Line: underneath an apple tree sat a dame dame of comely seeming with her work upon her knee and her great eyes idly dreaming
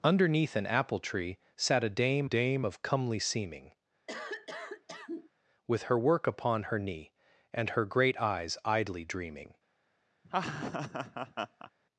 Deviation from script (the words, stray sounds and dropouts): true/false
true